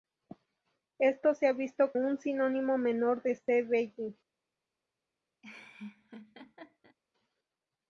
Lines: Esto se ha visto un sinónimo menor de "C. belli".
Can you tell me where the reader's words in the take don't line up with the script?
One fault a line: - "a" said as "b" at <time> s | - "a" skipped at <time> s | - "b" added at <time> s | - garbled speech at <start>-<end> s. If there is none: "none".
none